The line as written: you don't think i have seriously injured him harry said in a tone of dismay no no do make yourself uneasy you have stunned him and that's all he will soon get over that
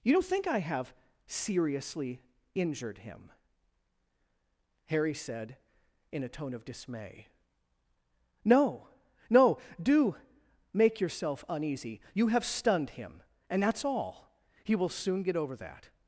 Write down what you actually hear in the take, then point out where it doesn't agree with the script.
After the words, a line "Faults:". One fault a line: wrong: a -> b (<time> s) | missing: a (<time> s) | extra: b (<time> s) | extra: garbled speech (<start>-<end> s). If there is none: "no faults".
you don't think i have seriously injured him harry said in a tone of dismay no no do make yourself uneasy you have stunned him and that's all he will soon get over that
Faults:
no faults